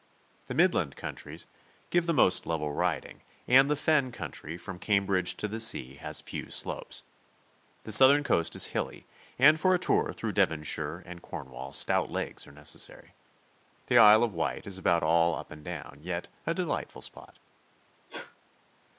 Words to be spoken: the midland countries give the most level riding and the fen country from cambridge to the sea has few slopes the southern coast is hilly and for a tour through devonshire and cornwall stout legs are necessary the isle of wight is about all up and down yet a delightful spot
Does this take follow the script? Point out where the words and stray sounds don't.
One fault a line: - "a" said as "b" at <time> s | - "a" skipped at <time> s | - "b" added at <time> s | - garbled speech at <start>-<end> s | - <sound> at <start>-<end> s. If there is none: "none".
- sneeze at 18.1-18.4 s